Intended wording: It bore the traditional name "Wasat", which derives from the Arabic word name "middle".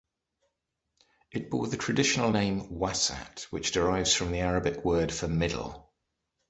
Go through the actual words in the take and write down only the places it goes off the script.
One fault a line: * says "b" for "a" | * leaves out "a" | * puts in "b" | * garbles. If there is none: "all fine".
* says "for" for "name"